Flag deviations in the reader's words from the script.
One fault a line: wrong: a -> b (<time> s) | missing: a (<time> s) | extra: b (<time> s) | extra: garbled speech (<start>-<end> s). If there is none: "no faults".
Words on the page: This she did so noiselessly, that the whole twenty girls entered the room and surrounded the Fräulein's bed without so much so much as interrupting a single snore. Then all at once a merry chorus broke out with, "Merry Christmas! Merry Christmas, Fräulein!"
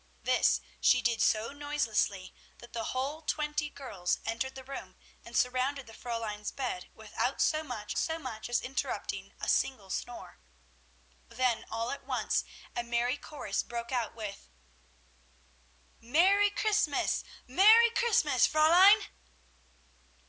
no faults